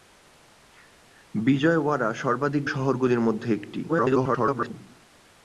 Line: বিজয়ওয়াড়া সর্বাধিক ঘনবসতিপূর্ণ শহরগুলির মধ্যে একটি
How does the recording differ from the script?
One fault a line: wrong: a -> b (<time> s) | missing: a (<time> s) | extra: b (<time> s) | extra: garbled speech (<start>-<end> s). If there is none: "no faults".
missing: ঘনবসতিপূর্ণ (2.6 s)
extra: garbled speech (3.9-4.7 s)